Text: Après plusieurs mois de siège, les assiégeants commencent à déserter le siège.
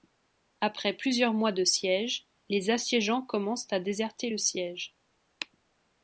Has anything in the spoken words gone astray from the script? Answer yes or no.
no